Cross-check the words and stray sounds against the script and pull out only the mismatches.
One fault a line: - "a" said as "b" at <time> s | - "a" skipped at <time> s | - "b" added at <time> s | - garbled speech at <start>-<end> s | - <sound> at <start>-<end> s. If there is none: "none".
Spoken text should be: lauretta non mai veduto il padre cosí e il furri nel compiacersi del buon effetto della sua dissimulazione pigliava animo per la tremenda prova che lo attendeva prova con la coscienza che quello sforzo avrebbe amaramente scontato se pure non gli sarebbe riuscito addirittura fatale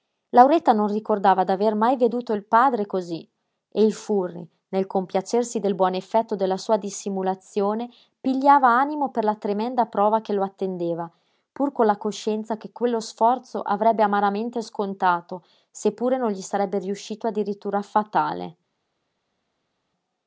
- "ricordava d'aver" added at 0.9 s
- "prova" said as "pur" at 11.5 s